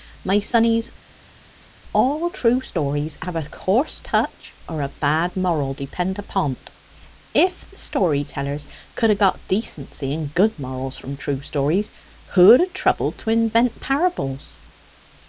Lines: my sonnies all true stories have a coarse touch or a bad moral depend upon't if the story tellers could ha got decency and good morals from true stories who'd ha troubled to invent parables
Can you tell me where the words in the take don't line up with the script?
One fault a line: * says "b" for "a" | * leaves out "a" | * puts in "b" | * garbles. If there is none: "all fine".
all fine